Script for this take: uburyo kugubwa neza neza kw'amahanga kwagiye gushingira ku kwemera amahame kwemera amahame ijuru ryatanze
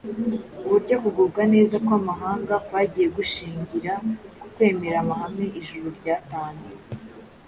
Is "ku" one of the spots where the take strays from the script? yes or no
no